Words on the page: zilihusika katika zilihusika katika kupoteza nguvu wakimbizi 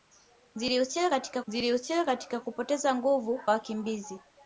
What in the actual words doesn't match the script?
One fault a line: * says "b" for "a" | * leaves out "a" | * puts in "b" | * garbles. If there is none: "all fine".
all fine